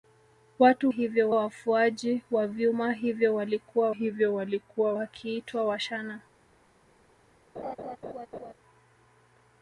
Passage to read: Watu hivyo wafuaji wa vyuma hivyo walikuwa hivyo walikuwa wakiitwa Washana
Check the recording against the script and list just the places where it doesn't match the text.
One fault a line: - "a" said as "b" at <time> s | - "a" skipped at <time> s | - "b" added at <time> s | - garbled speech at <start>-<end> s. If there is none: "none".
none